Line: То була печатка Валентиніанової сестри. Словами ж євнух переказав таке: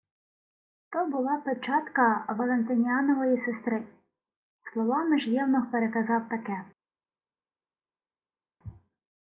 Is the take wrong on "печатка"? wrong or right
right